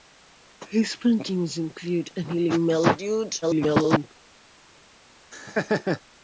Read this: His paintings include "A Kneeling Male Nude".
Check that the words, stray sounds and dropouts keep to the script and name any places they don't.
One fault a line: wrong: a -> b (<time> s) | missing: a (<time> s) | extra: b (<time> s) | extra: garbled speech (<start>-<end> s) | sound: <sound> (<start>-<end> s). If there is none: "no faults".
extra: garbled speech (3.4-4.1 s)
sound: laugh (5.3-6.0 s)